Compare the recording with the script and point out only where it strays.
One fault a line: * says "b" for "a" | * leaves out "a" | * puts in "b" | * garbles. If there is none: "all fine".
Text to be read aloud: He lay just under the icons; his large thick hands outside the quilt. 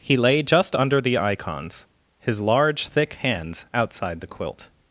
all fine